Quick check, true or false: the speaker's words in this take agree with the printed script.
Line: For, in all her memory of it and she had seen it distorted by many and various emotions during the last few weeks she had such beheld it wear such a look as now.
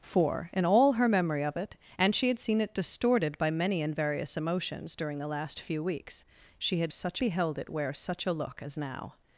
true